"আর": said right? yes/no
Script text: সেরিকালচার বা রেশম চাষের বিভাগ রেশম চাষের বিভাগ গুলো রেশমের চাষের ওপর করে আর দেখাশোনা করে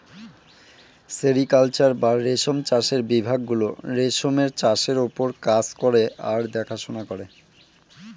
yes